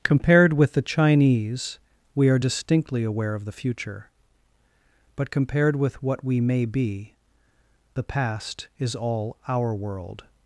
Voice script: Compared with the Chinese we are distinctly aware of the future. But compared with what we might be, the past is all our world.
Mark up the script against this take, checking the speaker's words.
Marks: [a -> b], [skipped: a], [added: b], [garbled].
Compared with the Chinese we are distinctly aware of the future. But compared with what we [might -> may] be, the past is all our world.